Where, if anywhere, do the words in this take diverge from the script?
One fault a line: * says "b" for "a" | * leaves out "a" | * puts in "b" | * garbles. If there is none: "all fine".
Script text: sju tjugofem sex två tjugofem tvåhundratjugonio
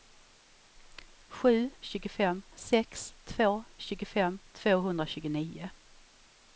all fine